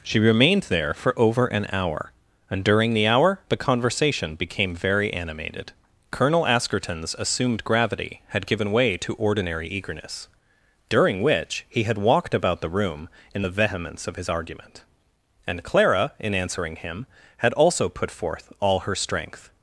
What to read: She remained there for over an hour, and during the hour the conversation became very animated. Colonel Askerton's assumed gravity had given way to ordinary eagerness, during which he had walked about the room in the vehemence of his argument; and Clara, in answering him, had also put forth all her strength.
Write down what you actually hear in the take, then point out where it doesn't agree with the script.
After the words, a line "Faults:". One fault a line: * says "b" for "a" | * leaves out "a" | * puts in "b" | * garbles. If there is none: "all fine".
She remained there for over an hour, and during the hour the conversation became very animated. Colonel Askerton's assumed gravity had given way to ordinary eagerness, during which he had walked about the room in the vehemence of his argument; and Clara, in answering him, had also put forth all her strength.
Faults:
all fine